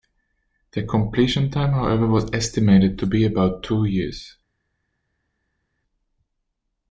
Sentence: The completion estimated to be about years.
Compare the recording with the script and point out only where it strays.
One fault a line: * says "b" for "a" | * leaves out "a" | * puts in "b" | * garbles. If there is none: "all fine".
* puts in "time however was"
* puts in "two"